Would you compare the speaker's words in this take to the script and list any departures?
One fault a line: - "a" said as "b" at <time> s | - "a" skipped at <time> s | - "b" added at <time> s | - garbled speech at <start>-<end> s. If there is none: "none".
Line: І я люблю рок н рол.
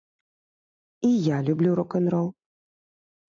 none